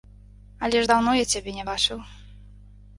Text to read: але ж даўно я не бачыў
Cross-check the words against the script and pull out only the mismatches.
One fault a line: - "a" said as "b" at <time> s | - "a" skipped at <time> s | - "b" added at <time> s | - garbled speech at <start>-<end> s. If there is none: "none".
- "цябе" added at 1.3 s